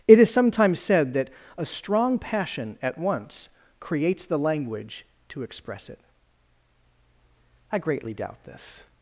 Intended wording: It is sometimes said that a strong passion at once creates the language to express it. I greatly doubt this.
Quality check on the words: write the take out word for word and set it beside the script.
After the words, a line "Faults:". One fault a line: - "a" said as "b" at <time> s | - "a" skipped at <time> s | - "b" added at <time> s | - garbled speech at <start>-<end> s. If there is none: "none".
It is sometimes said that a strong passion at once creates the language to express it. I greatly doubt this.
Faults:
none